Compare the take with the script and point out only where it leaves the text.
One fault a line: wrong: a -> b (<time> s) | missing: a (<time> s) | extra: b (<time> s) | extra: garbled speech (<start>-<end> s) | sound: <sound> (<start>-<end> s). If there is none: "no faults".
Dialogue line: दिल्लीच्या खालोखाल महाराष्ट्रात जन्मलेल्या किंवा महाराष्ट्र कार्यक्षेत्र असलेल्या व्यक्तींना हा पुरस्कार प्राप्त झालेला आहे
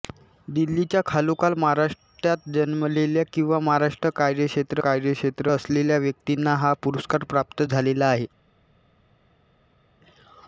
extra: कार्यक्षेत्र (4.8 s)